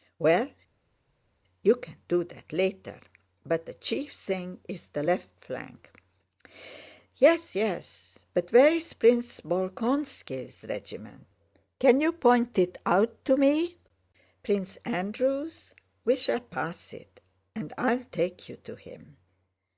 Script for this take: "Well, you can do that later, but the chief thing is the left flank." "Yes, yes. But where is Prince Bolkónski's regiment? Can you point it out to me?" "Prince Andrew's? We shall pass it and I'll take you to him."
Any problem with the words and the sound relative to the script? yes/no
no